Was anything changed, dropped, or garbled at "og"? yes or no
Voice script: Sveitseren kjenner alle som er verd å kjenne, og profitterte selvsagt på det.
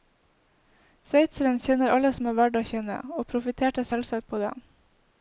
no